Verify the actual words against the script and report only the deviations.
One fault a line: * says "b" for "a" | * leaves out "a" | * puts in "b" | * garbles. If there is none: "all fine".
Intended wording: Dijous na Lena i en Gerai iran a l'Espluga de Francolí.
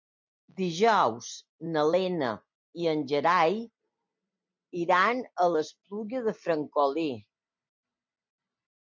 all fine